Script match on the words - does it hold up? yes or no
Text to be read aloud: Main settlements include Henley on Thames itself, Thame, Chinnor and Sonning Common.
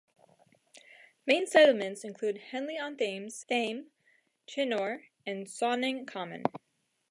no